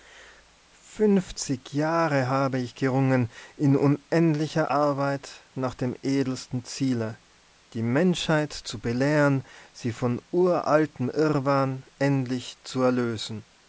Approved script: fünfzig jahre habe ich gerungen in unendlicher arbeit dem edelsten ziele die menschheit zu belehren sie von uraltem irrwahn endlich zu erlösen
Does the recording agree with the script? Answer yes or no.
no